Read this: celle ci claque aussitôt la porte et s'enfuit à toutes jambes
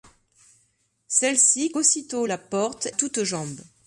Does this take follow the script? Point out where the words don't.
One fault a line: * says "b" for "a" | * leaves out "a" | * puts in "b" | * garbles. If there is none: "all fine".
* leaves out "claque"
* leaves out "et s'enfuit à"